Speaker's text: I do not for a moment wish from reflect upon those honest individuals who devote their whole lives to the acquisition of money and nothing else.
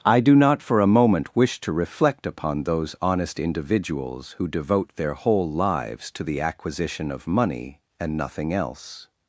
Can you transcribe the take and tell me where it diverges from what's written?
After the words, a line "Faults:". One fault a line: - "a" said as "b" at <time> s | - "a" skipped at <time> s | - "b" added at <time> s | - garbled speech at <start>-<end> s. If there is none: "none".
I do not for a moment wish to reflect upon those honest individuals who devote their whole lives to the acquisition of money and nothing else.
Faults:
- "from" said as "to" at 1.6 s